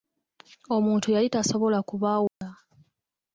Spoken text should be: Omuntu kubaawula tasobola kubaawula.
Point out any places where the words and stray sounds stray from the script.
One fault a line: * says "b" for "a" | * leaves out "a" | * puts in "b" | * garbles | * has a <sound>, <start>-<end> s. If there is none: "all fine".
* says "yali" for "kubaawula"
* has a dropout, 2.3-2.4 s